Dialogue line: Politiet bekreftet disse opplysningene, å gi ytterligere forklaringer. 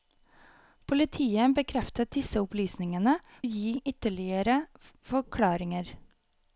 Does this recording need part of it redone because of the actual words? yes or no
no